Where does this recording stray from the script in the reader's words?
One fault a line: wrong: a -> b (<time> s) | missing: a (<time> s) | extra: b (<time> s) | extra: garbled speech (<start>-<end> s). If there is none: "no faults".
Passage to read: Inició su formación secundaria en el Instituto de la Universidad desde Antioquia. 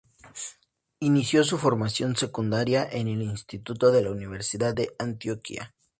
wrong: desde -> de (4.7 s)